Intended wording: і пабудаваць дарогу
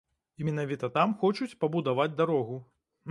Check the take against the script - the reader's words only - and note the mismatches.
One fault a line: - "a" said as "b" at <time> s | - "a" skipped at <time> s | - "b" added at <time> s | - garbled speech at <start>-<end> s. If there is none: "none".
- "менавіта там хочуць" added at 0.5 s